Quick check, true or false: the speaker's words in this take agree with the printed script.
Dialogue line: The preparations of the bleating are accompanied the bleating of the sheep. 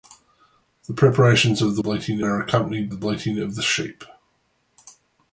true